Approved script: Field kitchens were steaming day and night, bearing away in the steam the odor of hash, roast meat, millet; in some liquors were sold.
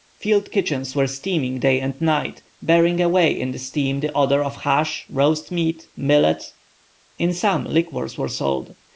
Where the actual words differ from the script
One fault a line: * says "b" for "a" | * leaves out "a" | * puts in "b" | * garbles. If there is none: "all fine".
all fine